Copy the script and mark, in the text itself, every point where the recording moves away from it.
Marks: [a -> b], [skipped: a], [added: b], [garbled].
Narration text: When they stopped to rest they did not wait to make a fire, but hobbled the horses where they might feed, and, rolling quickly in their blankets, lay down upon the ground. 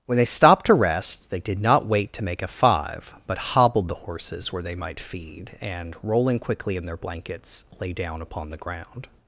When they stopped to rest they did not wait to make a [fire, -> five] but hobbled the horses where they might feed, and, rolling quickly in their blankets, lay down upon the ground.